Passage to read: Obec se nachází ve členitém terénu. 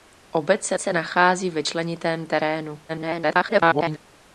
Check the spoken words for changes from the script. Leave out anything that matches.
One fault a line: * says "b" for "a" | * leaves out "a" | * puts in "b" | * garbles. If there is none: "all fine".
* puts in "se"
* garbles